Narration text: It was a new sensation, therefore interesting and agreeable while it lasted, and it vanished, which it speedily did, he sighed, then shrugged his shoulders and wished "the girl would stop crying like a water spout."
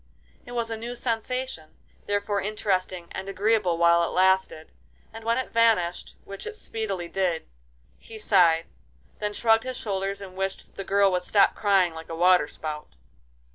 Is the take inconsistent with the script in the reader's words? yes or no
yes